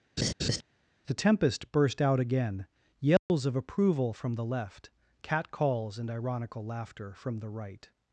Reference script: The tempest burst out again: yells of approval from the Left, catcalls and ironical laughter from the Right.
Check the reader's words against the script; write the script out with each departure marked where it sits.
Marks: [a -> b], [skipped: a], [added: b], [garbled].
The tempest burst out again: yells of approval from the Left, catcalls and ironical laughter from the Right.